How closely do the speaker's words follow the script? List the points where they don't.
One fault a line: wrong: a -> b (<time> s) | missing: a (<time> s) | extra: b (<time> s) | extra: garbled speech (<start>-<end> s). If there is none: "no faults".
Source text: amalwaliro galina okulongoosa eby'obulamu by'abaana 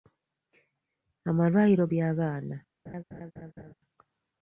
missing: galina okulongoosa eby'obulamu (1.9 s)